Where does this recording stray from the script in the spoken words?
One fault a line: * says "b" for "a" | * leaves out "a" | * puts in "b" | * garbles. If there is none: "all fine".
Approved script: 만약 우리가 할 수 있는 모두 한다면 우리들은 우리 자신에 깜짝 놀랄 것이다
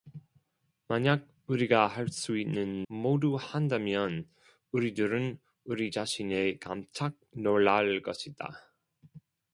all fine